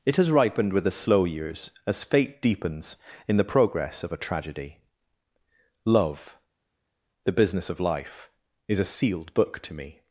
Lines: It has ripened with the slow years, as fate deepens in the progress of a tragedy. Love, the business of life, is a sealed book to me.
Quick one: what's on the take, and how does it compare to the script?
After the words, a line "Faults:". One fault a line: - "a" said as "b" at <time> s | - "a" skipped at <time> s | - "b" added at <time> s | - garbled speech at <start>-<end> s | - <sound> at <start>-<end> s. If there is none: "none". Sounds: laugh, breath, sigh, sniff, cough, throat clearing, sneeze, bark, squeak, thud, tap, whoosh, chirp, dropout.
It has ripened with the slow years, as fate deepens in the progress of a tragedy. Love, the business of life, is a sealed book to me.
Faults:
none